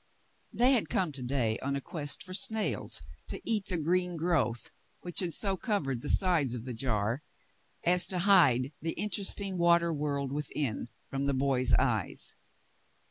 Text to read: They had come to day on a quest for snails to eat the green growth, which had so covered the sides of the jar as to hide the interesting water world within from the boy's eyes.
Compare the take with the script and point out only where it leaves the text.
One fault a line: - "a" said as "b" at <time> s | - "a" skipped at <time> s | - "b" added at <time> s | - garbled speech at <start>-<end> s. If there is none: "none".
none